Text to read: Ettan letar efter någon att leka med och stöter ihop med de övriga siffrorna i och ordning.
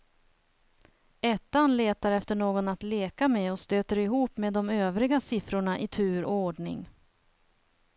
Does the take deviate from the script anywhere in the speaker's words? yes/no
yes